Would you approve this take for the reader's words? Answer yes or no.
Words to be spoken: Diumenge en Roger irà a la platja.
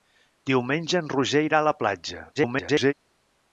no